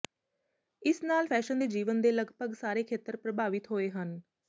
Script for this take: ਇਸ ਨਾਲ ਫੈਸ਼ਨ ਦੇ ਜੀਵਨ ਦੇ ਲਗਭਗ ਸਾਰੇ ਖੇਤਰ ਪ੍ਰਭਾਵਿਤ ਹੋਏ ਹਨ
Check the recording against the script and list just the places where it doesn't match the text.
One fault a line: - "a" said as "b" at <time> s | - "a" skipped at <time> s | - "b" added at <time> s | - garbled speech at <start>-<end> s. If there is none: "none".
none